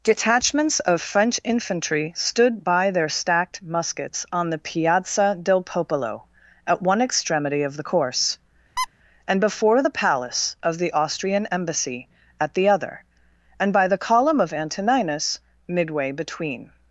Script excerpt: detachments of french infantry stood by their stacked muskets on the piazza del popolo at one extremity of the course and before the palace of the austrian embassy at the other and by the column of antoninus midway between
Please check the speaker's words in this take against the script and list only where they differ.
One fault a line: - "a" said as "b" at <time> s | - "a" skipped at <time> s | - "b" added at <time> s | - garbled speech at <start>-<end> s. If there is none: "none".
none